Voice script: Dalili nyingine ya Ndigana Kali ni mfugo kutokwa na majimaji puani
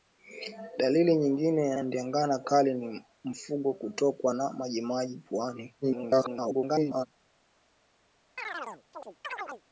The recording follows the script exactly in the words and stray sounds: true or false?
false